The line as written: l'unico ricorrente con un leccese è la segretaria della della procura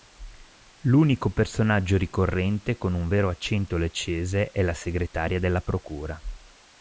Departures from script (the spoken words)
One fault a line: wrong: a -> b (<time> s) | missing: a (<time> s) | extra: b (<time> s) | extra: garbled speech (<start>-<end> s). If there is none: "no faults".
extra: personaggio (1.3 s)
extra: vero accento (3.1 s)
missing: della (5.6 s)